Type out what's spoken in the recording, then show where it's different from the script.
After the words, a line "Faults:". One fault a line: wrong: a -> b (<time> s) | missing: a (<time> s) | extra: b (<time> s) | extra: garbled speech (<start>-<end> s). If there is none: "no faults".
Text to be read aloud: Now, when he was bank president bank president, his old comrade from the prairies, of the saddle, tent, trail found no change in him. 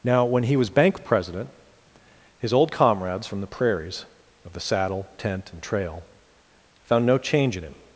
Now, when he was bank president, his old comrades from the prairies, of the saddle, tent, and trail found no change in him.
Faults:
missing: bank president (1.5 s)
wrong: comrade -> comrades (2.7 s)
extra: and (5.5 s)